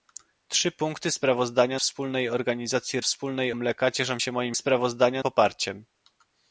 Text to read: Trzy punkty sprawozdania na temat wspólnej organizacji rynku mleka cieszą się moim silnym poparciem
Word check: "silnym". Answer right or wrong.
wrong